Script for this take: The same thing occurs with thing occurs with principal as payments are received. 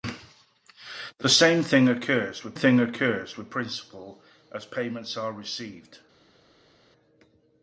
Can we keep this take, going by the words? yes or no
yes